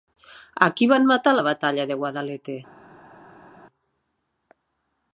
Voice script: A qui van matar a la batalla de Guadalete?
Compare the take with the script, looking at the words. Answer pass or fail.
pass